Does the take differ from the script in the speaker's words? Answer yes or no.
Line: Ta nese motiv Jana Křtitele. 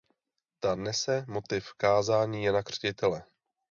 yes